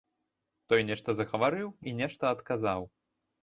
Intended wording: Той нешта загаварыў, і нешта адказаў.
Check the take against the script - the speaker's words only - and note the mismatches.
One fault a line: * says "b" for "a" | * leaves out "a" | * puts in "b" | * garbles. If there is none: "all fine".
all fine